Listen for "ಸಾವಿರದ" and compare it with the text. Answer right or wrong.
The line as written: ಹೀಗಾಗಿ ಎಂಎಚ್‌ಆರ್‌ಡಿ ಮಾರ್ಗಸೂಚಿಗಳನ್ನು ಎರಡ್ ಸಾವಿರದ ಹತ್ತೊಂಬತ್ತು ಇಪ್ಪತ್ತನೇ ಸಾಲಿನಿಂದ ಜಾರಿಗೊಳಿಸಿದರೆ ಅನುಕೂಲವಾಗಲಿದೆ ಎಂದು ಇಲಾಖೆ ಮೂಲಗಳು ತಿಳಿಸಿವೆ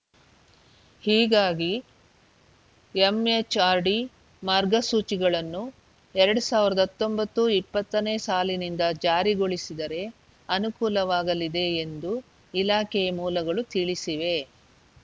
right